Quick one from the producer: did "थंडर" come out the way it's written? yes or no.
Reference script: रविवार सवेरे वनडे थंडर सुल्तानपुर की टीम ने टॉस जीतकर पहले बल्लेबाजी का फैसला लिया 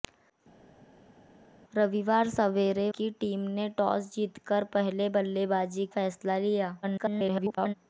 no